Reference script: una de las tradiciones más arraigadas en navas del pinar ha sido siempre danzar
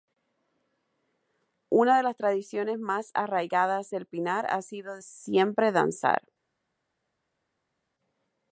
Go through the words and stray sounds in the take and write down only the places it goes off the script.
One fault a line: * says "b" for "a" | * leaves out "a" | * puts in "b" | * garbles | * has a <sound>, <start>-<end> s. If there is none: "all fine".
* leaves out "en navas"